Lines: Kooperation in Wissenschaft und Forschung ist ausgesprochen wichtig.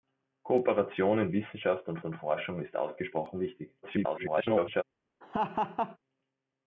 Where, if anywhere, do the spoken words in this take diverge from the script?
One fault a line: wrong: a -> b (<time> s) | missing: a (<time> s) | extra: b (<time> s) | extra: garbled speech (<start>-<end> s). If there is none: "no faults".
extra: und (2.0 s)
extra: garbled speech (3.8-4.8 s)